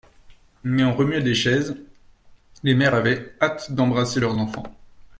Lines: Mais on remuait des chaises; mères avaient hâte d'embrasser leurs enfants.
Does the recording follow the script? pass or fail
fail